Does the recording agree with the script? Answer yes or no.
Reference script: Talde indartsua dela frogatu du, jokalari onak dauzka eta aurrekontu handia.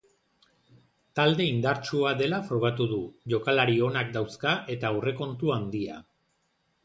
yes